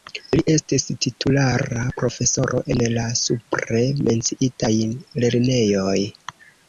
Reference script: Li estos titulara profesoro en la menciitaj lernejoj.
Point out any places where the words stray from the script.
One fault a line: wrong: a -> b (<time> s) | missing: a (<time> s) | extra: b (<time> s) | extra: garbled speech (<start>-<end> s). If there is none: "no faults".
wrong: estos -> estis (0.5 s)
extra: supre (3.2 s)